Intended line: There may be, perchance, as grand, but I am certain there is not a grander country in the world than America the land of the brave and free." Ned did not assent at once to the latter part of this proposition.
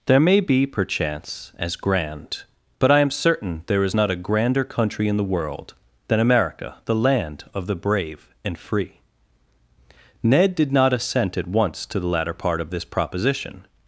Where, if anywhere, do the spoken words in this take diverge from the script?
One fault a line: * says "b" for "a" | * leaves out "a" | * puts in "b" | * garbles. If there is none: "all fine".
all fine